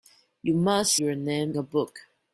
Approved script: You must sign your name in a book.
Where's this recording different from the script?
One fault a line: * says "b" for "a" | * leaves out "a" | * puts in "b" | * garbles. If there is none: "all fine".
* leaves out "sign"
* leaves out "in"